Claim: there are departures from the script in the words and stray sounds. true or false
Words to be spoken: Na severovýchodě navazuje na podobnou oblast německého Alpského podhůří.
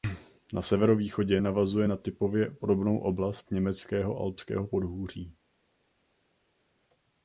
true